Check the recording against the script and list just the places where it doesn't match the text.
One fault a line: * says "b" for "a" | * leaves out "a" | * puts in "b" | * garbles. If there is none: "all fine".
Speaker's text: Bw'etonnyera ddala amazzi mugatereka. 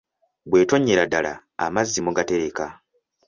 all fine